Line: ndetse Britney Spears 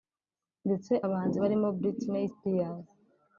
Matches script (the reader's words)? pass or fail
fail